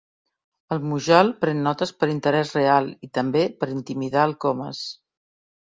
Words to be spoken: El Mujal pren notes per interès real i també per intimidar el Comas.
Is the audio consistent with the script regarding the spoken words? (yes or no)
yes